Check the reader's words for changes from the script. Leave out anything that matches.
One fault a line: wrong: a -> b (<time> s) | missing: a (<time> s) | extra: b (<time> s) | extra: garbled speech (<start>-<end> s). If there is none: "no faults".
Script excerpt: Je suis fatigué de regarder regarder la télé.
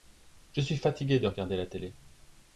missing: regarder (1.6 s)